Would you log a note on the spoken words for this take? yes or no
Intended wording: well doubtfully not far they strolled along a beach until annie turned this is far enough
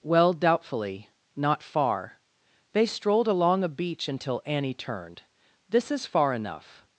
no